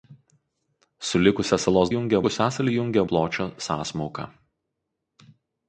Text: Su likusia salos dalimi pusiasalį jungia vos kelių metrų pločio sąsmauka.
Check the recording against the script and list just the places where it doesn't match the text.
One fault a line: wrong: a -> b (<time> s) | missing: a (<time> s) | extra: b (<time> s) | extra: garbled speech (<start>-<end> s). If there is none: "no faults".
wrong: dalimi -> jungia (1.9 s)
missing: vos kelių metrų (3.0 s)